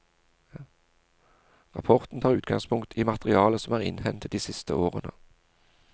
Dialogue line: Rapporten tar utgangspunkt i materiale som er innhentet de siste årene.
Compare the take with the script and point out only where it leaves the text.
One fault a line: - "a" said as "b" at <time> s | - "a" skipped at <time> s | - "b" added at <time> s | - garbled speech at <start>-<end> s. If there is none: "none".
none